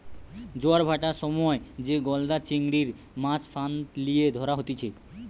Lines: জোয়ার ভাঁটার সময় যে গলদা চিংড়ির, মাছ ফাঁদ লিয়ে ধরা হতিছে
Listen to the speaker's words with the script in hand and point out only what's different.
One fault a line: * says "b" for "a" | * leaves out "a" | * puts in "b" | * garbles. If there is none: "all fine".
all fine